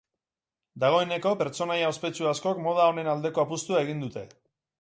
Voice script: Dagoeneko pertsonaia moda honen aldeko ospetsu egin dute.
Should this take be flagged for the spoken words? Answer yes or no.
yes